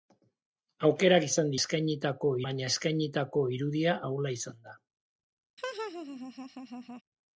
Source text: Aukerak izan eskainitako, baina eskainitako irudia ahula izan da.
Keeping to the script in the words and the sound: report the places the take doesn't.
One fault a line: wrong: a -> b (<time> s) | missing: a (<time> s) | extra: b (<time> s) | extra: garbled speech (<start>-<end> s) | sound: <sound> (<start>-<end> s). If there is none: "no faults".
sound: laugh (5.6-7.0 s)